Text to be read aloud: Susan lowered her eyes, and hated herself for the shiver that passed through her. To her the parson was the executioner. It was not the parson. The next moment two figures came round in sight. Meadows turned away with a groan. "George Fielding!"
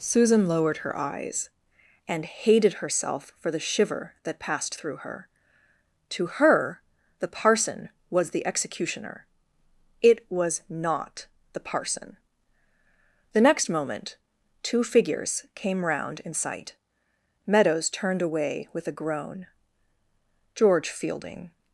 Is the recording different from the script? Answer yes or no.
no